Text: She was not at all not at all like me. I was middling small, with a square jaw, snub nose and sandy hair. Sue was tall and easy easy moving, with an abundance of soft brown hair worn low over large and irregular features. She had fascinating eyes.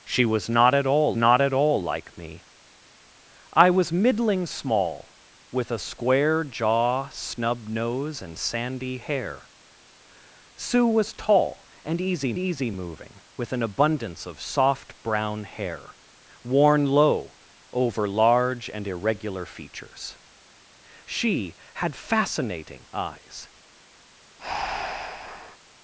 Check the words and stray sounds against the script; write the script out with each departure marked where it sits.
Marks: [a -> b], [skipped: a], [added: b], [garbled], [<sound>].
She was not at all not at all like me. I was middling small, with a square jaw, snub nose and sandy hair. Sue was tall and easy easy moving, with an abundance of soft brown hair worn low over large and irregular features. She had fascinating eyes. [breath]